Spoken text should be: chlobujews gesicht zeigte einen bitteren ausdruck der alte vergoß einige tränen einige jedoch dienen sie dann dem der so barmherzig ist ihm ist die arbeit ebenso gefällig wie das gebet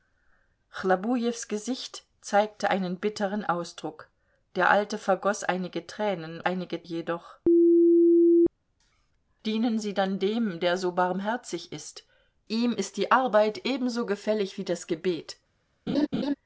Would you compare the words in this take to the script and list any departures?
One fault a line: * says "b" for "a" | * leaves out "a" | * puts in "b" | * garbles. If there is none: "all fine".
all fine